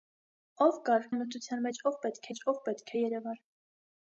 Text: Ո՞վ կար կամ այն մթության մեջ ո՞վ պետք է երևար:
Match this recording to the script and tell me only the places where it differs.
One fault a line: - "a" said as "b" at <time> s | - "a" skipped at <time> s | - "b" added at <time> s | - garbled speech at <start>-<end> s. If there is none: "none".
- "կամ" skipped at 1.1 s
- "մեջ ո՞վ պետք" added at 2.3 s